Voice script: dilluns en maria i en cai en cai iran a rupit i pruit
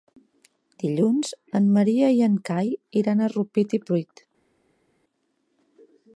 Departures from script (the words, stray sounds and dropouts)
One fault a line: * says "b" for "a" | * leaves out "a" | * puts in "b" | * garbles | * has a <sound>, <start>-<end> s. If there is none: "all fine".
* leaves out "en cai"